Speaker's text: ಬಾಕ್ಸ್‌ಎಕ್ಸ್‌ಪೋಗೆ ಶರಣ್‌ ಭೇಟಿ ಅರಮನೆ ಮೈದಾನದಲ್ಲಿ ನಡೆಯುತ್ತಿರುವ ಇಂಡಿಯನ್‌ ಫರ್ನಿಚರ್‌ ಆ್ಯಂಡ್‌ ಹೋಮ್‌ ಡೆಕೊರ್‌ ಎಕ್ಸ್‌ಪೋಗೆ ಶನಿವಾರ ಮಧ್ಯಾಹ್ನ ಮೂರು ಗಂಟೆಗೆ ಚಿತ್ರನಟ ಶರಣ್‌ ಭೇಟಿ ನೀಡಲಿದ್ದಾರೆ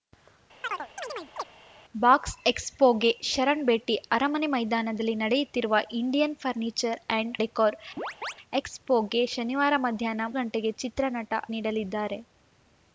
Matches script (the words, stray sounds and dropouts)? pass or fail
fail